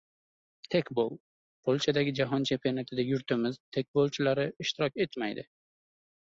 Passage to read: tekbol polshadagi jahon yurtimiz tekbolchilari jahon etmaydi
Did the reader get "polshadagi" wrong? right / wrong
right